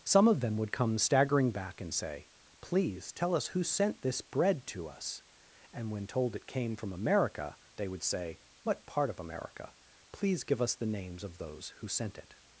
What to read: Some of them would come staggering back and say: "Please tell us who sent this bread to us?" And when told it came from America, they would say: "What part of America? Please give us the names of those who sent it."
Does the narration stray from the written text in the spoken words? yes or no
no